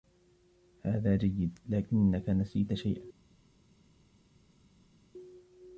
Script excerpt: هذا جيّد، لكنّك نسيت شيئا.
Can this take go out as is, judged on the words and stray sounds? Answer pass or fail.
pass